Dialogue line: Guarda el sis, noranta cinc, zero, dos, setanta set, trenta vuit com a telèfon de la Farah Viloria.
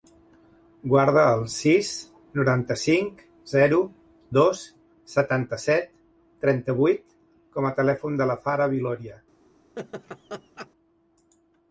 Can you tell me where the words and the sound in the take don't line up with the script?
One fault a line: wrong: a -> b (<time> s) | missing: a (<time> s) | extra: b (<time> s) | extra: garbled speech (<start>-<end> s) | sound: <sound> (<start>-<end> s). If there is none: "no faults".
sound: laugh (9.8-10.7 s)